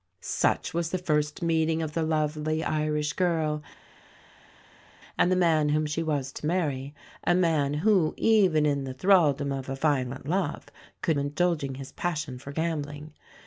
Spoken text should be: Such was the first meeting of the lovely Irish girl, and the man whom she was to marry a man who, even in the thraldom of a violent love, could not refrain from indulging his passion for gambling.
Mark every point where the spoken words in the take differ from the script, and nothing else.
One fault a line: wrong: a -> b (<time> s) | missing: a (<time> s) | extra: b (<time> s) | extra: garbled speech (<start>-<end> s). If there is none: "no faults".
missing: not refrain from (11.2 s)